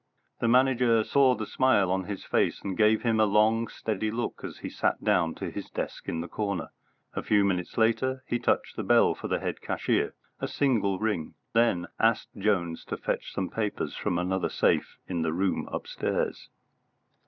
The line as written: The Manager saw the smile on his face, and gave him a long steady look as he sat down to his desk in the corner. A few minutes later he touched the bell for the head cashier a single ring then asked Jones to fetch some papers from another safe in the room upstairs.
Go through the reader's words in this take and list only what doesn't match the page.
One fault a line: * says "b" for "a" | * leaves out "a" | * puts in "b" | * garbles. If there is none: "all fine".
all fine